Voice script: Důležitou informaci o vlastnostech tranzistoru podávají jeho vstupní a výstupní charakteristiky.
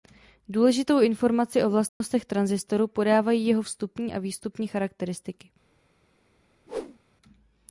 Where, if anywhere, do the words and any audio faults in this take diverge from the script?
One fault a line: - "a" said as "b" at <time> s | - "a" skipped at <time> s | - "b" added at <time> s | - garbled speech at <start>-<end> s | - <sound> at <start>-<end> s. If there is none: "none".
- dropout at 1.9-2.0 s
- whoosh at 6.7-7.0 s